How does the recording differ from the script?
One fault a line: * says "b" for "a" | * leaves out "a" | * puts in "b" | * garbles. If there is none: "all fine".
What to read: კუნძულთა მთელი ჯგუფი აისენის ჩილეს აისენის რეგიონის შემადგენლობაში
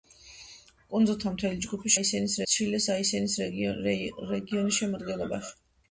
all fine